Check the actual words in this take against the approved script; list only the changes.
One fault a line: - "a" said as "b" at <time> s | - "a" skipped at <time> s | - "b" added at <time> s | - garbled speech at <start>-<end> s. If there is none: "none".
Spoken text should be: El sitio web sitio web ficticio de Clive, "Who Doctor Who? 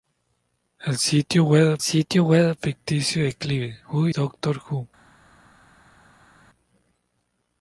none